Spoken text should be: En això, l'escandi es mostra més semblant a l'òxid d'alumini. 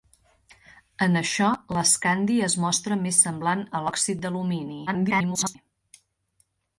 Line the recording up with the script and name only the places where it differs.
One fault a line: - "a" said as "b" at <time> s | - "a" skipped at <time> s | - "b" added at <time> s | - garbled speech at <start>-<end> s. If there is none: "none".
- garbled speech at 4.9-5.6 s